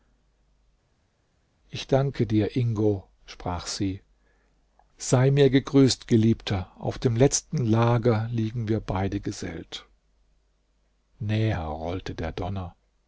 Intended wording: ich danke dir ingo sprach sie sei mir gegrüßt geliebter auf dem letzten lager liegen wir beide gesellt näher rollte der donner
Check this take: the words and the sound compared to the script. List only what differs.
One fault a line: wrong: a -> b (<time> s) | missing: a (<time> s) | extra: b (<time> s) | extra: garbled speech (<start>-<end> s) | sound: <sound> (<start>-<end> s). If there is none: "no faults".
no faults